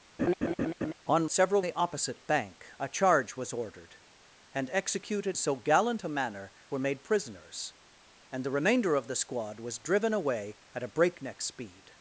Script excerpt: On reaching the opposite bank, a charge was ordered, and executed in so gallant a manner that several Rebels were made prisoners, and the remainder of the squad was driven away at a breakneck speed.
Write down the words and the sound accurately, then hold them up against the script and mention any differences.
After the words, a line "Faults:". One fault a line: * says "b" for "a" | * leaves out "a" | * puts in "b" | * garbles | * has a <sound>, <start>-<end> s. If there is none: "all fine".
On several the opposite bank, a charge was ordered, and executed so gallant a manner were made prisoners, and the remainder of the squad was driven away at a breakneck speed.
Faults:
* has a laugh, 0.2-0.9 s
* says "several" for "reaching"
* leaves out "in"
* leaves out "that several Rebels"